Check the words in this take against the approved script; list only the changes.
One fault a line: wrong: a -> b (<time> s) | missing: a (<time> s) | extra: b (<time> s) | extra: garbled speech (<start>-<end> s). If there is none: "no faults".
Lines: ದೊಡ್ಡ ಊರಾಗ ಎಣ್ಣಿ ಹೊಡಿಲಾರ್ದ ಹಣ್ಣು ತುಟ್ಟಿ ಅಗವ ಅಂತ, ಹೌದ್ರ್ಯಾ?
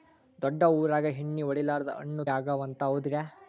missing: ತುಟ್ಟಿ (2.2 s)